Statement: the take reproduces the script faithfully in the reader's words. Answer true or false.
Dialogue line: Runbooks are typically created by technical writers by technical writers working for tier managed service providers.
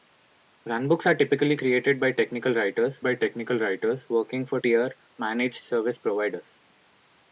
true